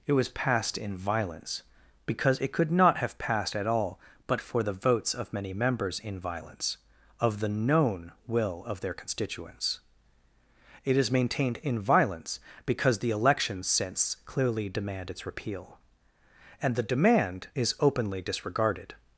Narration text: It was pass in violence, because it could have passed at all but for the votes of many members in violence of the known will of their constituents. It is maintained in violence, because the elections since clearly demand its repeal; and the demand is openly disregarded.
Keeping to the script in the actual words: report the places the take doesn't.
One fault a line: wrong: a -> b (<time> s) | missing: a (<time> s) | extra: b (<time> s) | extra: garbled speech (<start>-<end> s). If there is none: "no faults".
wrong: pass -> passed (0.3 s)
extra: not (2.7 s)